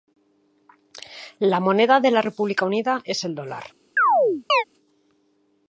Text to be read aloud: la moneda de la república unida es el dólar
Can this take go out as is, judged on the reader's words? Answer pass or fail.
pass